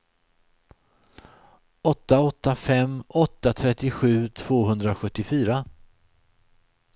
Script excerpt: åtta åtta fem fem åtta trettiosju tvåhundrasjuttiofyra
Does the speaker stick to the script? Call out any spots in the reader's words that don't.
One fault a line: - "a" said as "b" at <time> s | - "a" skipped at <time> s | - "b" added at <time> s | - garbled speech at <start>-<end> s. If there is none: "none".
- "fem" skipped at 3.0 s